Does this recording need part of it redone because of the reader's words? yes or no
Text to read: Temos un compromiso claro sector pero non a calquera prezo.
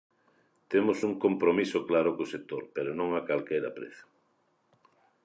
yes